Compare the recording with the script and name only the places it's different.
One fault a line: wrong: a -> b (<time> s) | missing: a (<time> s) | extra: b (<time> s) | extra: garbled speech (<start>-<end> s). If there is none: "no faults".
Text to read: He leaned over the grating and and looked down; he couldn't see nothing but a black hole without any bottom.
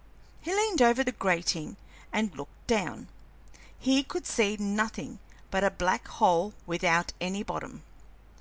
missing: and (2.3 s)
wrong: couldn't -> could (4.0 s)